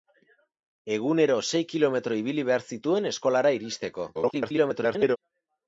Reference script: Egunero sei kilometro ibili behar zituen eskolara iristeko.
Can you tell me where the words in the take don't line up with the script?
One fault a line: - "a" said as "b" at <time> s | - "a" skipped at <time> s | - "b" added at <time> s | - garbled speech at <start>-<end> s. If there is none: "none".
- garbled speech at 4.1-5.2 s